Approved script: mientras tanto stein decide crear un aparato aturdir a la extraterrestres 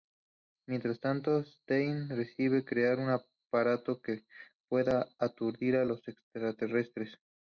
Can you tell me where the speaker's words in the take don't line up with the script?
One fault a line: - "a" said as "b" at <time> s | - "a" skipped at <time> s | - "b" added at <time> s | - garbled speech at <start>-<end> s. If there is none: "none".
- "que pueda" added at 4.0 s
- "la" said as "los" at 5.8 s